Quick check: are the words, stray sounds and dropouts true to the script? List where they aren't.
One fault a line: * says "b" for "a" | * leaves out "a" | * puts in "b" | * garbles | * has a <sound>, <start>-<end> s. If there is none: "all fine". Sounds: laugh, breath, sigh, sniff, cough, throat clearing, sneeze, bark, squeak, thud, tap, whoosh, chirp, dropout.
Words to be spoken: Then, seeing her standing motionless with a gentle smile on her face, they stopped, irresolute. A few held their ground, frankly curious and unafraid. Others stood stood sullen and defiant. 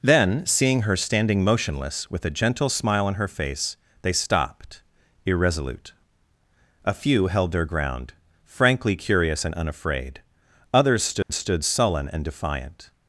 * has a dropout, 11.2-11.3 s